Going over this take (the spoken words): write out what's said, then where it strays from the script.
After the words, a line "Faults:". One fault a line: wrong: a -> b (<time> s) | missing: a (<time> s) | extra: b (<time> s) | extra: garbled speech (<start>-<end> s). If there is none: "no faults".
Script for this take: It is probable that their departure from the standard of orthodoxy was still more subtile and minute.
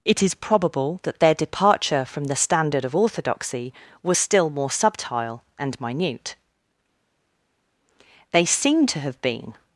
It is probable that their departure from the standard of orthodoxy was still more subtile and minute. They seem to have been
Faults:
extra: They seem to have been (8.3 s)